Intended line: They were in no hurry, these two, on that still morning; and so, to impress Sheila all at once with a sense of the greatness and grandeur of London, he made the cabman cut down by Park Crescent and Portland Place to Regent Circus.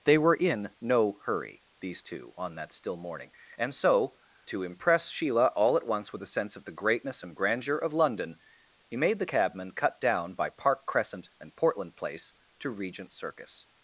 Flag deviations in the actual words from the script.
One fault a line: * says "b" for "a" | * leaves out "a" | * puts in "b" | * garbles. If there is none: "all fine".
all fine